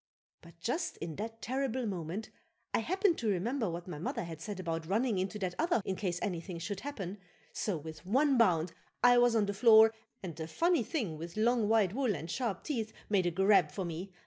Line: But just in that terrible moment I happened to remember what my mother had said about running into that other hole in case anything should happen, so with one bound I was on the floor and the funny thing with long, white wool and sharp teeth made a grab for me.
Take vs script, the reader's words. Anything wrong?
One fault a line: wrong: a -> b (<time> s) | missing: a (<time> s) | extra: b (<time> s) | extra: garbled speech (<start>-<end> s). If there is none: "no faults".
missing: hole (5.8 s)